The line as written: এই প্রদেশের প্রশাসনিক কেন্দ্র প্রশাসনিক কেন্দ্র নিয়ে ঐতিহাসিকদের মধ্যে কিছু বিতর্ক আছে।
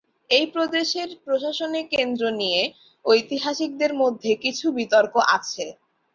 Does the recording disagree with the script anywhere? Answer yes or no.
yes